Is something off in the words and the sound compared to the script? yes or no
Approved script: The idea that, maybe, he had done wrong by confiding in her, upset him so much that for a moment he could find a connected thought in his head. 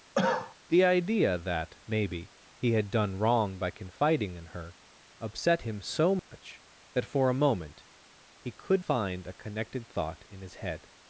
yes